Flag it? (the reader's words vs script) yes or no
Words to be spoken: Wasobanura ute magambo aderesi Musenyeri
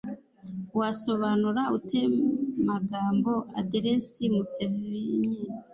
no